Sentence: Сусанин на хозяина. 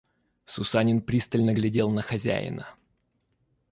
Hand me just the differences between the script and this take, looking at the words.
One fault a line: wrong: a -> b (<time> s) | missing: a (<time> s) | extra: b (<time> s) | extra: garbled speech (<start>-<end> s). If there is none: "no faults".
extra: пристально глядел (1.0 s)